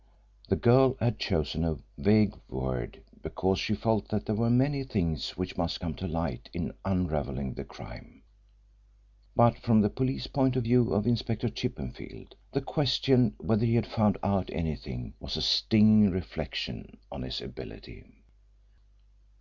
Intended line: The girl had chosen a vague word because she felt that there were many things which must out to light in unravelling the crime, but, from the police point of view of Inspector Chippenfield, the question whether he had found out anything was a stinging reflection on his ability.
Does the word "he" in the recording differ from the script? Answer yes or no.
no